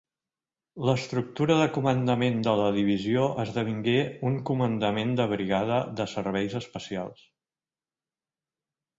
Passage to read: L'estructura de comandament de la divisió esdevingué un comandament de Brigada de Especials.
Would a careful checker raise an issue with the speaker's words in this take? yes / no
yes